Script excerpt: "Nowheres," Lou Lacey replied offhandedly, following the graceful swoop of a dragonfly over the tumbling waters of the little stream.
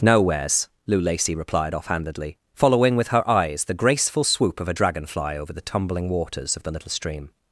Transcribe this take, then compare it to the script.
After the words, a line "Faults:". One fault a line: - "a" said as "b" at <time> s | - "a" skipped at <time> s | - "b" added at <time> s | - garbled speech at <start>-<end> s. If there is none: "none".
"Nowheres," Lou Lacey replied offhandedly, following with her eyes the graceful swoop of a dragonfly over the tumbling waters of the little stream.
Faults:
- "with her eyes" added at 3.0 s